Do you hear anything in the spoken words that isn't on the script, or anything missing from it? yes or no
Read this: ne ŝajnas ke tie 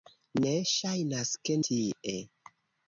no